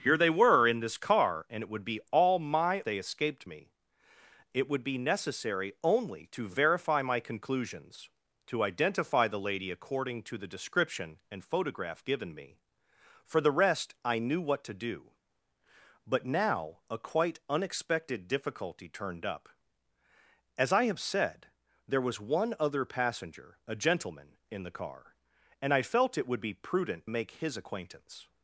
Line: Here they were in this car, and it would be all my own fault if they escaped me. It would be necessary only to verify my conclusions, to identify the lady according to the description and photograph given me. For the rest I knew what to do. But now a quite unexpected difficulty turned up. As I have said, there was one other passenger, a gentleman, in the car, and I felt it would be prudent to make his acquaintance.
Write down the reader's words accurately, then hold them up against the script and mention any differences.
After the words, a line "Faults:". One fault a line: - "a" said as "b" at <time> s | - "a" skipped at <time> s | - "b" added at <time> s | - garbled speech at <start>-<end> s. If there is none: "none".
Here they were in this car, and it would be all my they escaped me. It would be necessary only to verify my conclusions, to identify the lady according to the description and photograph given me. For the rest I knew what to do. But now a quite unexpected difficulty turned up. As I have said, there was one other passenger, a gentleman, in the car, and I felt it would be prudent make his acquaintance.
Faults:
- "own fault if" skipped at 2.8 s
- "to" skipped at 27.1 s